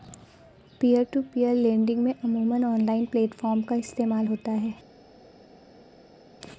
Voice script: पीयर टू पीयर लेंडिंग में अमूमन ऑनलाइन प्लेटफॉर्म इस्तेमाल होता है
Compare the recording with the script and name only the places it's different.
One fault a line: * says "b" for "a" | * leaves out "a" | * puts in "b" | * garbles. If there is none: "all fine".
* puts in "का"